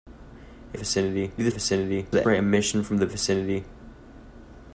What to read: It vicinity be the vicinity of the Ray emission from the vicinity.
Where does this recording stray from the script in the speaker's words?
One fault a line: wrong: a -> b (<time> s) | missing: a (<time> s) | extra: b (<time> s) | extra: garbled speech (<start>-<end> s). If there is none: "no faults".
no faults